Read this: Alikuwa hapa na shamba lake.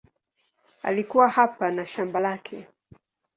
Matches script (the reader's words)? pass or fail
pass